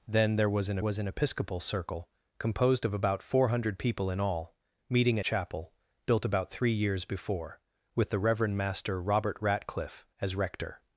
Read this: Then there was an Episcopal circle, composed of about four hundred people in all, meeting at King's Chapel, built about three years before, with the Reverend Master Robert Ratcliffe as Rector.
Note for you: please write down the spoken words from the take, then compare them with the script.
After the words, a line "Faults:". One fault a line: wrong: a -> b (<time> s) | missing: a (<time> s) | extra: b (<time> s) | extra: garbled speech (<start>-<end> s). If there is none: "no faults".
Then there was an was an Episcopal circle, composed of about four hundred people in all, meeting Chapel, built about three years before, with the Reverend Master Robert Ratcliffe as Rector.
Faults:
extra: was an (0.8 s)
missing: at King's (5.2 s)